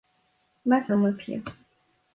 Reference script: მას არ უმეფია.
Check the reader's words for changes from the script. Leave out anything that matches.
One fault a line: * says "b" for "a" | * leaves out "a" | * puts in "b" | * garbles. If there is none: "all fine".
all fine